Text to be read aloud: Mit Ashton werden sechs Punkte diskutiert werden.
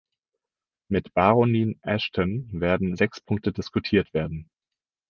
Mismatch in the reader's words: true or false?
true